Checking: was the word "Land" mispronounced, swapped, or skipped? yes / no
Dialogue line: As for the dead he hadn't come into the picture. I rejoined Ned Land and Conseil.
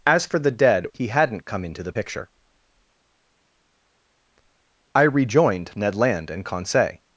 no